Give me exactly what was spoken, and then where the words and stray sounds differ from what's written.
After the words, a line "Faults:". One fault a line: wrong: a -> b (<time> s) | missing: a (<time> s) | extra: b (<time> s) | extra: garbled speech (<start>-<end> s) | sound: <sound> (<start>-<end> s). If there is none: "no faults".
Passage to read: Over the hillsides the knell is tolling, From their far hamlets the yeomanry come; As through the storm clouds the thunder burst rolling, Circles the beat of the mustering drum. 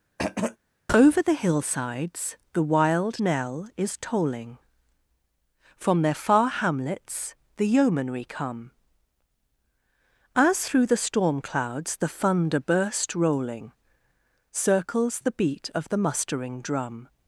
Over the hillsides the wild knell is tolling, From their far hamlets the yeomanry come; As through the storm clouds the thunder burst rolling, Circles the beat of the mustering drum.
Faults:
sound: throat clearing (0.2-0.6 s)
extra: wild (2.6 s)